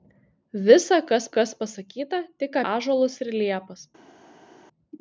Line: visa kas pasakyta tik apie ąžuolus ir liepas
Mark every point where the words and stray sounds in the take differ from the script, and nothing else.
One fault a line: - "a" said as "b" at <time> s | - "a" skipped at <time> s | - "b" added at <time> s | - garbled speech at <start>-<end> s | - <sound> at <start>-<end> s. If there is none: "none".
- "kas" added at 1.4 s
- "apie" skipped at 2.6 s